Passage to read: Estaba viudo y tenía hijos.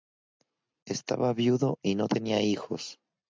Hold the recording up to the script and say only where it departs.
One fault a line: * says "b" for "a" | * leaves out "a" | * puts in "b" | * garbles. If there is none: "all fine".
* puts in "no"